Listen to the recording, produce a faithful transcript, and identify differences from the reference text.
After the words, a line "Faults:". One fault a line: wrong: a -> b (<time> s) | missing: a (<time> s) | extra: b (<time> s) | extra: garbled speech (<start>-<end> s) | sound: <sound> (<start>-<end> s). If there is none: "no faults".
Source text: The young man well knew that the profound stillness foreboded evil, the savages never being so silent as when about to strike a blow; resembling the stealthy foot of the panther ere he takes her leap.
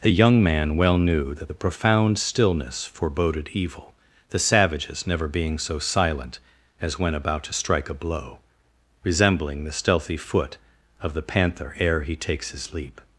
The young man well knew that the profound stillness foreboded evil, the savages never being so silent as when about to strike a blow; resembling the stealthy foot of the panther ere he takes his leap.
Faults:
wrong: her -> his (12.5 s)